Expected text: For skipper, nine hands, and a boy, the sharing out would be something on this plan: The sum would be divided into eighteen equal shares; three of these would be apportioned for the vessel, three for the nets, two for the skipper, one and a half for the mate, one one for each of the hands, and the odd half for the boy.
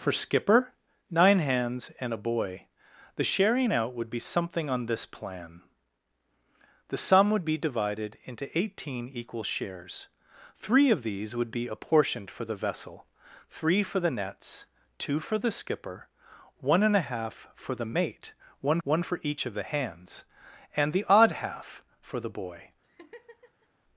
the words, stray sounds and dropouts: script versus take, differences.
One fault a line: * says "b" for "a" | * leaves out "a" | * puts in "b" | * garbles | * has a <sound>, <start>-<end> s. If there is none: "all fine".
* has a laugh, 22.8-23.7 s